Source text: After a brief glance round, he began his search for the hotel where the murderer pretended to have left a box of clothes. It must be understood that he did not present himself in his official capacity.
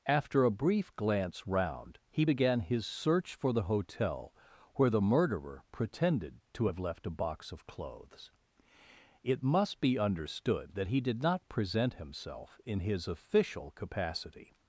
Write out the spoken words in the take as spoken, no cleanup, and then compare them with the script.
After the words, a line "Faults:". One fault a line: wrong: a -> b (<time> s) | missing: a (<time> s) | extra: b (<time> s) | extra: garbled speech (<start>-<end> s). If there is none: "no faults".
After a brief glance round, he began his search for the hotel where the murderer pretended to have left a box of clothes. It must be understood that he did not present himself in his official capacity.
Faults:
no faults